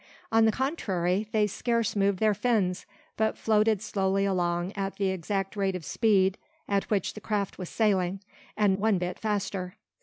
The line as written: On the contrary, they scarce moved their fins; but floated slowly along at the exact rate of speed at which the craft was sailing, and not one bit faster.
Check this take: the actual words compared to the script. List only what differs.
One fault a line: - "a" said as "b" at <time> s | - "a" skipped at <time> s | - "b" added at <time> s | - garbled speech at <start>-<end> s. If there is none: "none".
- "not" skipped at 8.7 s